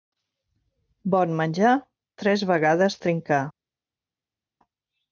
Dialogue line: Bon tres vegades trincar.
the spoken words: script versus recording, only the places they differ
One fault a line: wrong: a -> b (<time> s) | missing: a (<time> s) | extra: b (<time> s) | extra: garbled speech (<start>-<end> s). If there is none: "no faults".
extra: menjar (1.4 s)